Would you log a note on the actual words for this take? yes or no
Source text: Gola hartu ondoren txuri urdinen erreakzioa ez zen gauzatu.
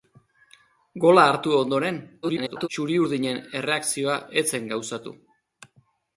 yes